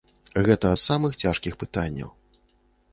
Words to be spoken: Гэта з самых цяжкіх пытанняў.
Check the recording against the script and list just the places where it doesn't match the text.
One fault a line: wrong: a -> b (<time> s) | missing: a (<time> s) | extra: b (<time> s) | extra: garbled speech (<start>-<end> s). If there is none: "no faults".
no faults